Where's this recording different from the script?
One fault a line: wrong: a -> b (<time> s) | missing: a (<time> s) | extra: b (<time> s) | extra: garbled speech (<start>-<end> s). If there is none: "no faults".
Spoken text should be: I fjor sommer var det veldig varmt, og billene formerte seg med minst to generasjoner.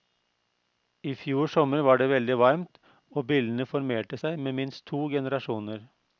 no faults